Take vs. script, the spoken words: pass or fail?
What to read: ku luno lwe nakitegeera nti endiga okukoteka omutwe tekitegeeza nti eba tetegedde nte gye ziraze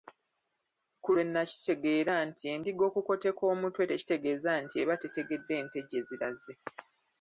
fail